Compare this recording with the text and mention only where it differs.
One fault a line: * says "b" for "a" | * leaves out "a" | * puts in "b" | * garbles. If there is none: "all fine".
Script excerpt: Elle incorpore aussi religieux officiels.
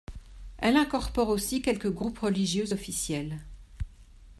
* puts in "quelques groupes"